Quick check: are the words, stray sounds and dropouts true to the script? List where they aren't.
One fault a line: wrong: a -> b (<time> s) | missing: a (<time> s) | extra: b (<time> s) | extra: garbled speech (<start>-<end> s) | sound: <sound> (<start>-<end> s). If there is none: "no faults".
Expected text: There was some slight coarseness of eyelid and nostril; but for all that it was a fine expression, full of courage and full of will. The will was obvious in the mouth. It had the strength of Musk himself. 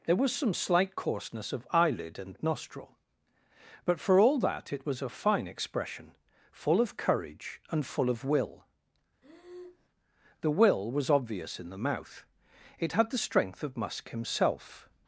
sound: breath (9.2-9.9 s)